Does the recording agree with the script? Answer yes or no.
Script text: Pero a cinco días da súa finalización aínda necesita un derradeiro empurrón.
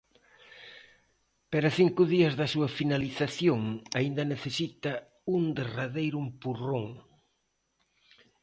yes